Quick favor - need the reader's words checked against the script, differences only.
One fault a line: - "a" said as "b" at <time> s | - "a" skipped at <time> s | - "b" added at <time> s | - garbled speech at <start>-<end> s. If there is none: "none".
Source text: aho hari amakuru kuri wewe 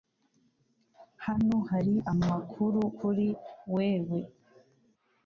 - "aho" said as "hano" at 1.2 s